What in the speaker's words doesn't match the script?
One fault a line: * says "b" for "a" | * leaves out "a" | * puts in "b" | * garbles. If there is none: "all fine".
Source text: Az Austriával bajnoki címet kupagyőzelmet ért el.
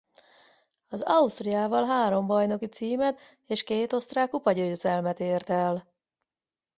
* puts in "három"
* puts in "és két osztrák"